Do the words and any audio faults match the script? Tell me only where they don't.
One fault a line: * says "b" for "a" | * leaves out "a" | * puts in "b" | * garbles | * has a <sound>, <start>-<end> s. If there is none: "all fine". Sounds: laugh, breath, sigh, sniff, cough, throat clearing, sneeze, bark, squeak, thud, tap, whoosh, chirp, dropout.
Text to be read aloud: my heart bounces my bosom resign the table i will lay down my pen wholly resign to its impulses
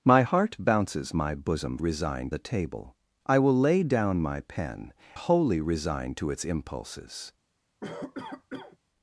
* has a cough, 7.8-8.8 s